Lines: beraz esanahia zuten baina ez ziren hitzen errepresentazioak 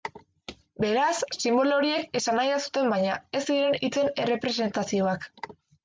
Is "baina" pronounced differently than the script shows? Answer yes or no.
no